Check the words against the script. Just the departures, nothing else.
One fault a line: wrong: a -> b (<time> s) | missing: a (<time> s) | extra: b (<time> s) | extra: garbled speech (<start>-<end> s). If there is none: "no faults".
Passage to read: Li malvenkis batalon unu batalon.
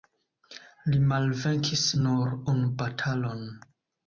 wrong: batalon -> nur (2.0 s)